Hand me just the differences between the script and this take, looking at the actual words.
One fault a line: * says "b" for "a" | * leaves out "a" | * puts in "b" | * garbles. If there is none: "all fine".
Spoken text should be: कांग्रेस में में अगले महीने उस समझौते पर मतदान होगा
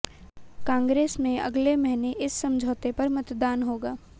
* leaves out "में"
* says "इस" for "उस"